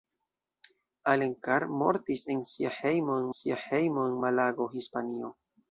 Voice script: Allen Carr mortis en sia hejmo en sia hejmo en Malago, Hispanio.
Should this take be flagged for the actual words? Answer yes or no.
no